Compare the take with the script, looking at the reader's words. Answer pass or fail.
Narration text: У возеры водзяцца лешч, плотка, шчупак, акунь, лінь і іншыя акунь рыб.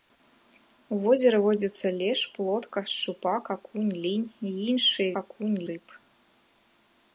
pass